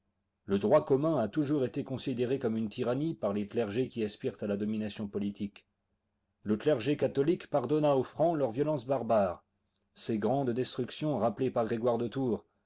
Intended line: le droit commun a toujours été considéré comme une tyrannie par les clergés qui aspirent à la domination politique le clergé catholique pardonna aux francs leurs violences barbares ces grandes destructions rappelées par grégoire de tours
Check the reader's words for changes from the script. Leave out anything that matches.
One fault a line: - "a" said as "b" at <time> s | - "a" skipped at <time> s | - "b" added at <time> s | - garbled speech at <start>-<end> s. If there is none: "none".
none